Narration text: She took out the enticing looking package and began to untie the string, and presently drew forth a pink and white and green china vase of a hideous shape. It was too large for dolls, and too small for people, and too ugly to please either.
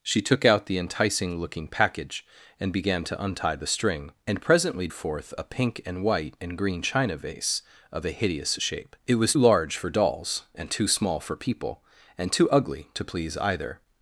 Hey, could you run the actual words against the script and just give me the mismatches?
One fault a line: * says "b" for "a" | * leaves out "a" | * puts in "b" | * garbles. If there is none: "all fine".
* leaves out "drew"
* leaves out "too"